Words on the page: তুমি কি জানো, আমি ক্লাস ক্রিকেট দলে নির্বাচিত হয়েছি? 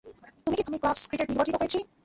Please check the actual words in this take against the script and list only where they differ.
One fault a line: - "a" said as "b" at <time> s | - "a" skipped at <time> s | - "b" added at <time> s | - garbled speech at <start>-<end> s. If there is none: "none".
- "জানো" skipped at 0.6 s
- "দলে" skipped at 1.3 s